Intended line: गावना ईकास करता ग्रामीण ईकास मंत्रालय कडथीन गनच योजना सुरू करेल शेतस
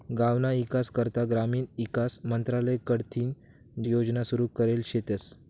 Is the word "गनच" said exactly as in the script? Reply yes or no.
no